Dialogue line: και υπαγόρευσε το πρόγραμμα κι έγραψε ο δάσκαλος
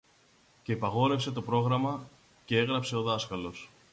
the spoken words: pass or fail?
pass